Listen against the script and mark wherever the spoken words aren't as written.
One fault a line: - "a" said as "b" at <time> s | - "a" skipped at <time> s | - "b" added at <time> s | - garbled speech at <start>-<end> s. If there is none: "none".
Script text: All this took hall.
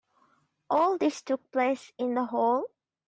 - "place in the" added at 1.5 s